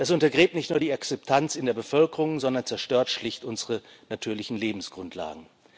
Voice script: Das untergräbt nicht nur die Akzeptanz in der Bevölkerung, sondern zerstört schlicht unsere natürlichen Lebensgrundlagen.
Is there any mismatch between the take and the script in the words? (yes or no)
no